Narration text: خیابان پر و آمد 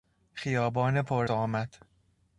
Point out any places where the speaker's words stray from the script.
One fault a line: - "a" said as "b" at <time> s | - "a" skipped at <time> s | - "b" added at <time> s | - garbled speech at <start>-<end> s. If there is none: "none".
none